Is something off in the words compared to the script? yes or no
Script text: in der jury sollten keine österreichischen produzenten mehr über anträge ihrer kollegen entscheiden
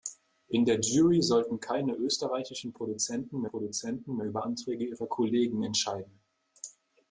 yes